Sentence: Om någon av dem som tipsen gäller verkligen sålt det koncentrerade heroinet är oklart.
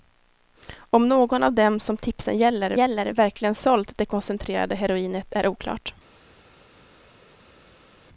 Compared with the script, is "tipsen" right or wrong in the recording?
right